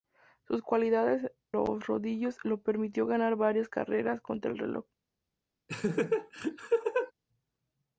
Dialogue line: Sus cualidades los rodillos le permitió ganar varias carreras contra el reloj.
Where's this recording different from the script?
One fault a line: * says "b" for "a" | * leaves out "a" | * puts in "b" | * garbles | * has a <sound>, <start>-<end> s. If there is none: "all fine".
* has a laugh, 5.7-7.1 s